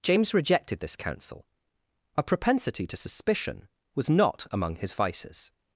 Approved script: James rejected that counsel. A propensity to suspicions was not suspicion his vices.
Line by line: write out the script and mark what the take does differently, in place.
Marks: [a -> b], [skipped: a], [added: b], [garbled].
James rejected [that -> this] counsel. A propensity to [suspicions -> suspicion] was not [suspicion -> among] his vices.